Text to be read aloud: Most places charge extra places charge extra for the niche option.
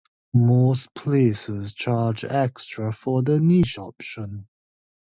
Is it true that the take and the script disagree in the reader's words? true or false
true